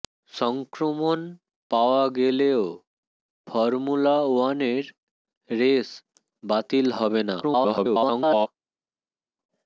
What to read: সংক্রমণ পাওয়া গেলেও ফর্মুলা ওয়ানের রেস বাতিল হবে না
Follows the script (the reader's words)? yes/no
no